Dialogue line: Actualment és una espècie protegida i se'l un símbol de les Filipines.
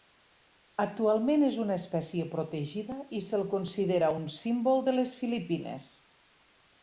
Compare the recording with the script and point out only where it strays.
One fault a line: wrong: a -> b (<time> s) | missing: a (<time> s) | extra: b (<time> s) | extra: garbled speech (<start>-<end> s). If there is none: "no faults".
extra: considera (3.6 s)